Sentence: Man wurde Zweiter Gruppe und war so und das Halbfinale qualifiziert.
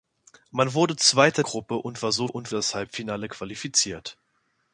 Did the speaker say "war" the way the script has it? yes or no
yes